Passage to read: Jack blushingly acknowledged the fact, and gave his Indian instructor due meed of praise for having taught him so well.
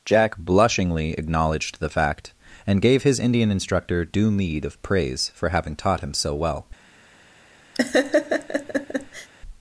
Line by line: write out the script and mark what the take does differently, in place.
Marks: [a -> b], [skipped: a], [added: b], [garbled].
Jack blushingly acknowledged the fact, and gave his Indian instructor due meed of praise for having taught him so well.